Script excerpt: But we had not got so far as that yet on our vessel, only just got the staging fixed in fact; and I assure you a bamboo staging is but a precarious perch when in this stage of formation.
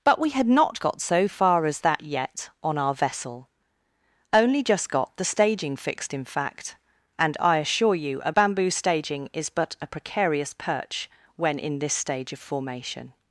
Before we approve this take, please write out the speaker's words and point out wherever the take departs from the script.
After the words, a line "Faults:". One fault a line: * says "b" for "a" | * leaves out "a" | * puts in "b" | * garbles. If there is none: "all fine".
But we had not got so far as that yet on our vessel, only just got the staging fixed in fact; and I assure you a bamboo staging is but a precarious perch when in this stage of formation.
Faults:
all fine